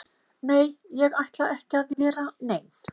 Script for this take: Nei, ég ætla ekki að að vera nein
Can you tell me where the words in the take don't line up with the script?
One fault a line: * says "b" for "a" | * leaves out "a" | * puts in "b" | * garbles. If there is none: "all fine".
all fine